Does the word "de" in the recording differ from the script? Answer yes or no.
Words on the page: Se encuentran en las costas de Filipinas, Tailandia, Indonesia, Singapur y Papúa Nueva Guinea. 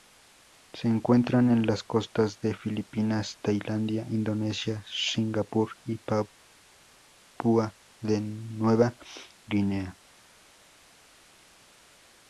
no